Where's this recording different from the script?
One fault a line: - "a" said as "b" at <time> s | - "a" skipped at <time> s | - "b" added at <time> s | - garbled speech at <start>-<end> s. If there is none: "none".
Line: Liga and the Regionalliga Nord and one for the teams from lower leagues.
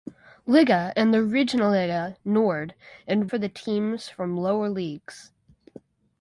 - "one" skipped at 3.3 s